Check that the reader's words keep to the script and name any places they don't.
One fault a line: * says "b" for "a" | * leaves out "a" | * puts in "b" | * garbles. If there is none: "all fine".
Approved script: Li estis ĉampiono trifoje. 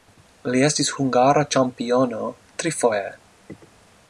* puts in "hungara"